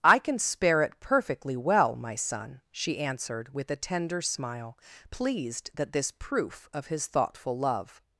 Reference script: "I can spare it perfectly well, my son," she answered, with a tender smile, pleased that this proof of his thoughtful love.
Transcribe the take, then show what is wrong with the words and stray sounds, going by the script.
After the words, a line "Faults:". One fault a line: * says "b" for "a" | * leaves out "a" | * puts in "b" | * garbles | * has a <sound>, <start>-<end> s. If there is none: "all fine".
"I can spare it perfectly well, my son," she answered, with a tender smile, pleased that this proof of his thoughtful love.
Faults:
all fine